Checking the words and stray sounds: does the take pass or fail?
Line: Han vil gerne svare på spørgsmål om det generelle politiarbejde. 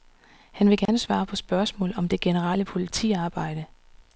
fail